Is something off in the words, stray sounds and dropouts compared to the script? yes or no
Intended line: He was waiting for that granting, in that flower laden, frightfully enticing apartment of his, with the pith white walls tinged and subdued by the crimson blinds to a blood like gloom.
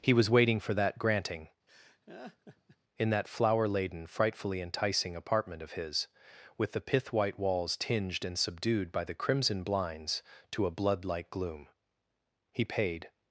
yes